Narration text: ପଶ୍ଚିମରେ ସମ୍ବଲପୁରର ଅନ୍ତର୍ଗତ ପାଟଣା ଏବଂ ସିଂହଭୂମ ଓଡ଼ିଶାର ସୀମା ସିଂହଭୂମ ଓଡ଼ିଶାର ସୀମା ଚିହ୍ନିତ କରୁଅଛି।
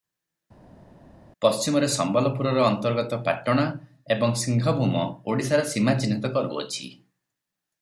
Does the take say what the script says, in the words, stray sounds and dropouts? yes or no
no